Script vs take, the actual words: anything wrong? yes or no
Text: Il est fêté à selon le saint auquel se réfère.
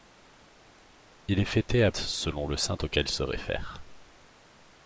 no